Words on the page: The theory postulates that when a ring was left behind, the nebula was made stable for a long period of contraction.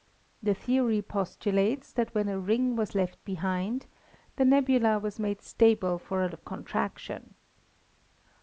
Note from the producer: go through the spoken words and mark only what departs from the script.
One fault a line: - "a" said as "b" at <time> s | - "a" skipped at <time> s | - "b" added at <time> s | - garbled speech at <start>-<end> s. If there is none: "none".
- "long period" skipped at 6.3 s